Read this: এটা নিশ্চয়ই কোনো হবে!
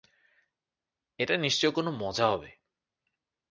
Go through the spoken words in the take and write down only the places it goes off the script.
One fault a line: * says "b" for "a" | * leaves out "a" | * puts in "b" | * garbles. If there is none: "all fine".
* puts in "মজা"